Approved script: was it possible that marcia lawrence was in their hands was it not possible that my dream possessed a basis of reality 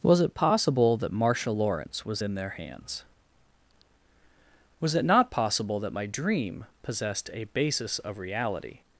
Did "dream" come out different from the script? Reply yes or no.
no